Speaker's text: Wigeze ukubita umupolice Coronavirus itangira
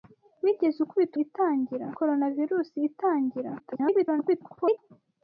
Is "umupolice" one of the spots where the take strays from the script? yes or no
yes